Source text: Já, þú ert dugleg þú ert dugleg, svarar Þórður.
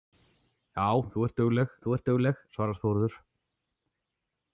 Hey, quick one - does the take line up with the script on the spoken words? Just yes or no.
yes